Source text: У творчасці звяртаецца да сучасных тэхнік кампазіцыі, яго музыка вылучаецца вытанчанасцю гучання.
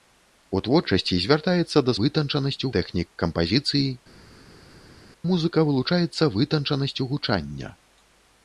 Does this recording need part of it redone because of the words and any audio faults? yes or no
yes